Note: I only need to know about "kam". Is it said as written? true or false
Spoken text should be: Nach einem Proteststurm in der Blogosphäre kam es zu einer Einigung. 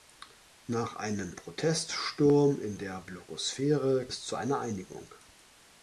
false